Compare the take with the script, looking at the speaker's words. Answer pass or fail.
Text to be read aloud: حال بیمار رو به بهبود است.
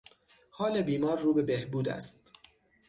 pass